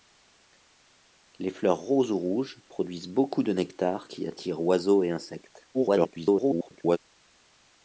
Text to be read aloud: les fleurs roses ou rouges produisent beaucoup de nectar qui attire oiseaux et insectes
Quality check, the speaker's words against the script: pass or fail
fail